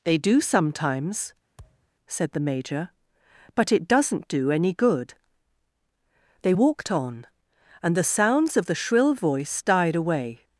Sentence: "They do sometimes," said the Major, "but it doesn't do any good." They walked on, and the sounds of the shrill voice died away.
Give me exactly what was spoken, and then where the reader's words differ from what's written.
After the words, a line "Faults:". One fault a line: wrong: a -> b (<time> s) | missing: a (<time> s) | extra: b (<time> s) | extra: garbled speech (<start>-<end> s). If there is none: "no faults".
"They do sometimes," said the Major, "but it doesn't do any good." They walked on, and the sounds of the shrill voice died away.
Faults:
no faults